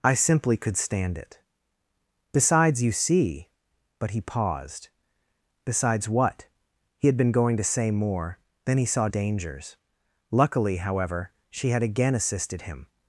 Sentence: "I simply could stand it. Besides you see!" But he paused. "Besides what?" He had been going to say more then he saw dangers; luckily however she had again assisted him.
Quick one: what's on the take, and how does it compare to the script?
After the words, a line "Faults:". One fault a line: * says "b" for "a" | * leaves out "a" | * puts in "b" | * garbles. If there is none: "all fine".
"I simply could stand it. Besides you see!" But he paused. "Besides what?" He had been going to say more then he saw dangers; luckily however she had again assisted him.
Faults:
all fine